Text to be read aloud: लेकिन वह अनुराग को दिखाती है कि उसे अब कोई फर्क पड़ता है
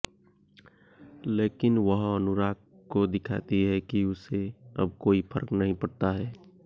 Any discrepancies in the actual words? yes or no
yes